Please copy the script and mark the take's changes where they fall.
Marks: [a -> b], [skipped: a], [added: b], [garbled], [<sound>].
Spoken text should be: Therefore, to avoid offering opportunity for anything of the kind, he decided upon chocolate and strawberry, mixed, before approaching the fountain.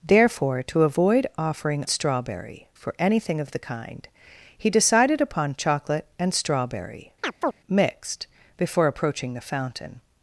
Therefore, to avoid offering [opportunity -> strawberry] for anything of the kind, he decided upon chocolate and strawberry, [chirp] mixed, before approaching the fountain.